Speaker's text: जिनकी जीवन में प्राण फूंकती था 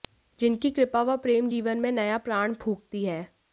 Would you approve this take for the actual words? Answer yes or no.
no